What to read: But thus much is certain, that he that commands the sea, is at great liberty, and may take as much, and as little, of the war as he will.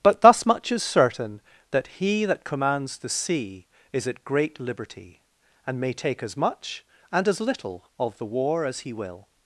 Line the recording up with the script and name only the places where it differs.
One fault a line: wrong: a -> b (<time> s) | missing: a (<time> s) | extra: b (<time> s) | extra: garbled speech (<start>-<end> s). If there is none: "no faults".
no faults